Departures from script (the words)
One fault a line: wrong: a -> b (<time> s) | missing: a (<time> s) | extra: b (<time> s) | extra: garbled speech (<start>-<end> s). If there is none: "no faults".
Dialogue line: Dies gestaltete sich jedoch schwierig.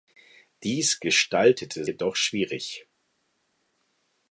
missing: sich (1.9 s)